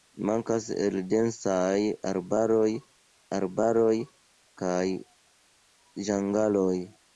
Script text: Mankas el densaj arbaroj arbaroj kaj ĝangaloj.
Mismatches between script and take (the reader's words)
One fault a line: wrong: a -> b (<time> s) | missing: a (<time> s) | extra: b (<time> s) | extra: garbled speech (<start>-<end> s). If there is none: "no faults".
no faults